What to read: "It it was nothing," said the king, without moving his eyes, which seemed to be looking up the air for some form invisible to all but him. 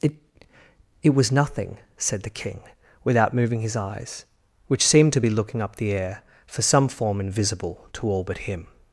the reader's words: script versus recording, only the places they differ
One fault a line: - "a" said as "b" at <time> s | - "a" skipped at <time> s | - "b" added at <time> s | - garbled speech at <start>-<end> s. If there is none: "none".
none